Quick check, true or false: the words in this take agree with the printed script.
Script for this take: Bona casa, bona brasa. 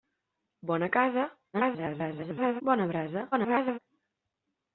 false